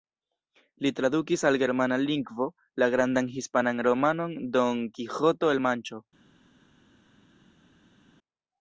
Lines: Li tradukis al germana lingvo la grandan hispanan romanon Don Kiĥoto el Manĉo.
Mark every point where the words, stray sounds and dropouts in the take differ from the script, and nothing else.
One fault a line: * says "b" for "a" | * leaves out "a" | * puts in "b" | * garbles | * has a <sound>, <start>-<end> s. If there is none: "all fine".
all fine